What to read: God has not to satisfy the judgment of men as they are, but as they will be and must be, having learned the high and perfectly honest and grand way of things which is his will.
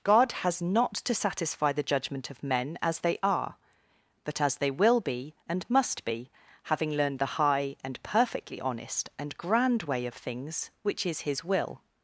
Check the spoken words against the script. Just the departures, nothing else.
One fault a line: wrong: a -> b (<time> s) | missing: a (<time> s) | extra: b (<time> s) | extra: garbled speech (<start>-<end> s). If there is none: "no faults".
no faults